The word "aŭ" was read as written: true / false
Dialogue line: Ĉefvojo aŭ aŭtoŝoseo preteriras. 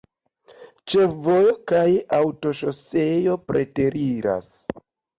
false